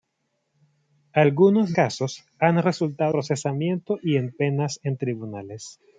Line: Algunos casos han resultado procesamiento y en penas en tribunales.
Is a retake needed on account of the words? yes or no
no